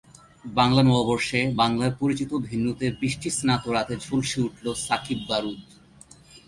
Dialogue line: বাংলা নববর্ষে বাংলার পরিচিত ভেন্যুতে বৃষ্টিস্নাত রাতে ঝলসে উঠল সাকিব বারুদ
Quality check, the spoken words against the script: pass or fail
pass